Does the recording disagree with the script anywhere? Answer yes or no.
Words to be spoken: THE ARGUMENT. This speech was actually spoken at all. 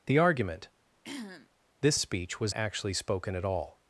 no